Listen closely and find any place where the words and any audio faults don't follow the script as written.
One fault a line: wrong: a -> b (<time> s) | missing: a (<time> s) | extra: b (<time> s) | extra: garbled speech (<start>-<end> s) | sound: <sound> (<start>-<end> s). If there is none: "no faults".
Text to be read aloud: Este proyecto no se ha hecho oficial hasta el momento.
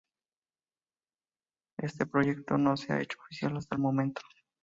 no faults